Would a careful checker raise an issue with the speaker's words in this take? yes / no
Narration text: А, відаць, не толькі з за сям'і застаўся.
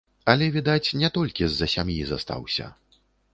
yes